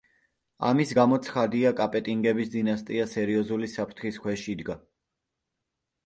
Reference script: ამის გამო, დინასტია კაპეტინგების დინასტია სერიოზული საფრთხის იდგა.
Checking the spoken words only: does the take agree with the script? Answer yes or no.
no